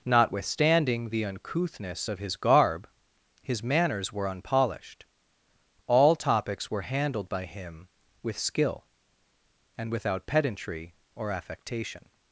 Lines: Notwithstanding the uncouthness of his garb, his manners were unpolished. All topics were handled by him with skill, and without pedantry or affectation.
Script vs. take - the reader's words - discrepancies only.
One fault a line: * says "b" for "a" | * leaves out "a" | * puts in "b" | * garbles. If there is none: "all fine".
all fine